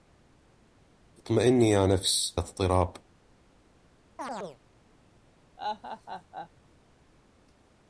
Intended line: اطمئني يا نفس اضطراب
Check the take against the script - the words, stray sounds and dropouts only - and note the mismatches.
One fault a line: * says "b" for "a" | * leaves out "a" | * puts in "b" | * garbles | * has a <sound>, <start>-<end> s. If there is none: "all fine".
* has a chirp, 4.2-4.6 s
* has a laugh, 5.6-6.5 s